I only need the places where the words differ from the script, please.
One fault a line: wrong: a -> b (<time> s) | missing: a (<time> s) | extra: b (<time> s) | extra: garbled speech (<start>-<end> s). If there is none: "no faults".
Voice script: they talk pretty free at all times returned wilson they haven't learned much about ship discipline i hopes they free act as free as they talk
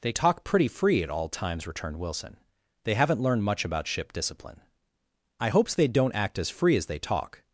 wrong: free -> don't (5.9 s)